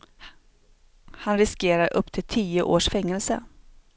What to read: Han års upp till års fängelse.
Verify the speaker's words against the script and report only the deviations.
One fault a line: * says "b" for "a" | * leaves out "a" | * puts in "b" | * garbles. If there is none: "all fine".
* says "riskerar" for "års"
* puts in "tio"